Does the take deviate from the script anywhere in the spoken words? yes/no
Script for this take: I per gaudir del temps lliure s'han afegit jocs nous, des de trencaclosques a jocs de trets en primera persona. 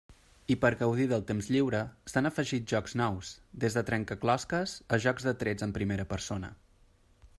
no